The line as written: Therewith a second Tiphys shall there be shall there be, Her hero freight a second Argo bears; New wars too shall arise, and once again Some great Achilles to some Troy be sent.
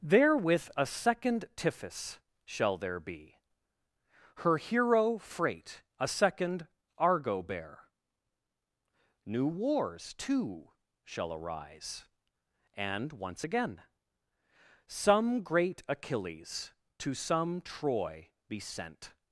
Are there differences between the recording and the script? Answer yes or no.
yes